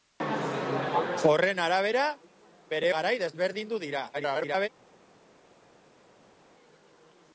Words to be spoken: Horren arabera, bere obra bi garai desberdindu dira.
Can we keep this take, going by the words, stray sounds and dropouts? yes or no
no